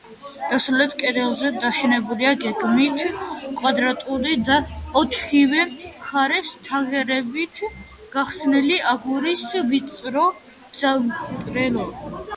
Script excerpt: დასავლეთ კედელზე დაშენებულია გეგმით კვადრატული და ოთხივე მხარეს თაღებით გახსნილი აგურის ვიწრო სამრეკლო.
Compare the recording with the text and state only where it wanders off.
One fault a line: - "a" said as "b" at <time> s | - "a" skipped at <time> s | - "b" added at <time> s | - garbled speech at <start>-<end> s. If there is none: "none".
none